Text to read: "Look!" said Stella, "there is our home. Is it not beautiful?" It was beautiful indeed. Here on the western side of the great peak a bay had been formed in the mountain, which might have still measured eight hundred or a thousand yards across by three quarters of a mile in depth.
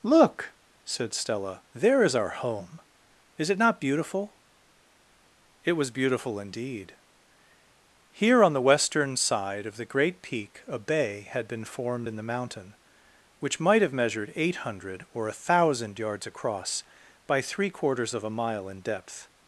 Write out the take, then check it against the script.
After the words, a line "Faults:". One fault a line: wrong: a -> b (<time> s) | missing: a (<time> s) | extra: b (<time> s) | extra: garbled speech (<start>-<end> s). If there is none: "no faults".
"Look!" said Stella, "there is our home. Is it not beautiful?" It was beautiful indeed. Here on the western side of the great peak a bay had been formed in the mountain, which might have measured eight hundred or a thousand yards across by three quarters of a mile in depth.
Faults:
missing: still (13.9 s)